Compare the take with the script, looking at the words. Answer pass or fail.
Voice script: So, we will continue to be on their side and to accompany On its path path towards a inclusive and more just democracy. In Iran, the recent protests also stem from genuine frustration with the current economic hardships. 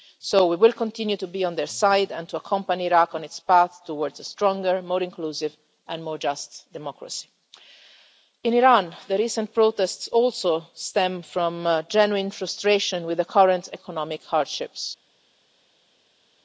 fail